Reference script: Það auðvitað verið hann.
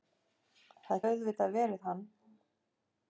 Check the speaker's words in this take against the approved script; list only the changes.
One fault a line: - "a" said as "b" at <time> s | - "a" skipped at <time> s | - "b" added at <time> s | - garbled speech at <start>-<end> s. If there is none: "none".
none